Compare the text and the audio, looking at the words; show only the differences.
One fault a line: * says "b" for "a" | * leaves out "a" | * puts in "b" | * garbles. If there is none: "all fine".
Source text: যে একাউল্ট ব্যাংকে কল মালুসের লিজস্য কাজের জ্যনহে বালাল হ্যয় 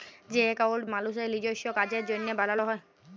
* leaves out "ব্যাংকে কল"